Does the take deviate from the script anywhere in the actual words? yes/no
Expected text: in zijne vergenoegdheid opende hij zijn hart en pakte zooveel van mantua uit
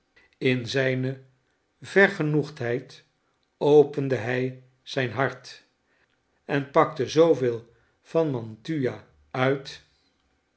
no